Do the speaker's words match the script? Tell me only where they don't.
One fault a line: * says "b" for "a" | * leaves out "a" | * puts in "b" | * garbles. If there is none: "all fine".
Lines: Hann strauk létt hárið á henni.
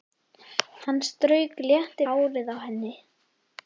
all fine